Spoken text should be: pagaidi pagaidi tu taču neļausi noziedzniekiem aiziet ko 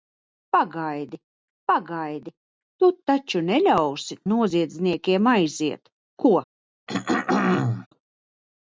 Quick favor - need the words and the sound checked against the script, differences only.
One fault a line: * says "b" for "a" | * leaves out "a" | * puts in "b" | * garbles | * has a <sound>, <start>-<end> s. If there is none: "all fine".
* has a throat clearing, 6.9-7.9 s